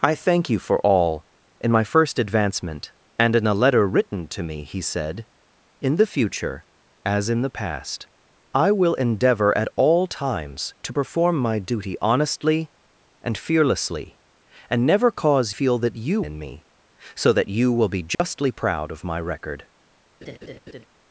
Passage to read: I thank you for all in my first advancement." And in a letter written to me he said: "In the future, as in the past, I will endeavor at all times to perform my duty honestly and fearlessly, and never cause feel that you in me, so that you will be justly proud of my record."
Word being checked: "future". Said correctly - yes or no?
yes